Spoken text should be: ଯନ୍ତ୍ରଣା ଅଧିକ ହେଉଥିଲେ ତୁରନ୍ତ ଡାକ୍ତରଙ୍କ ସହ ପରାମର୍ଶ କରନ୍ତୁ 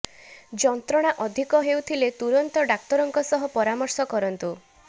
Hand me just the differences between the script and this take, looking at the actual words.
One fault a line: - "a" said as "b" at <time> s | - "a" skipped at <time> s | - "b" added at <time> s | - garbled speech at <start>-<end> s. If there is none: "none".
none